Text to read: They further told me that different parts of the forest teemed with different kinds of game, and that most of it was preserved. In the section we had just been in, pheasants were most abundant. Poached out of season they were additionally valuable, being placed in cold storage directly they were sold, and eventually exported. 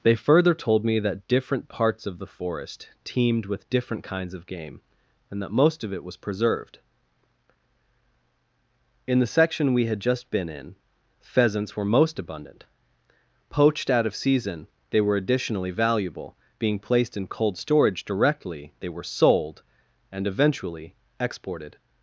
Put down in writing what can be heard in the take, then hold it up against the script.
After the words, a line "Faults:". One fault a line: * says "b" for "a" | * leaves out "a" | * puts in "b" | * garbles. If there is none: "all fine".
They further told me that different parts of the forest teemed with different kinds of game, and that most of it was preserved. In the section we had just been in, pheasants were most abundant. Poached out of season they were additionally valuable, being placed in cold storage directly they were sold, and eventually exported.
Faults:
all fine